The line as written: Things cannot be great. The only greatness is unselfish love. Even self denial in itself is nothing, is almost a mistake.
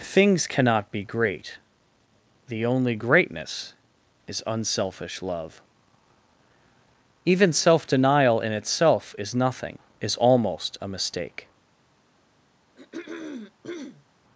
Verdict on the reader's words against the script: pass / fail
pass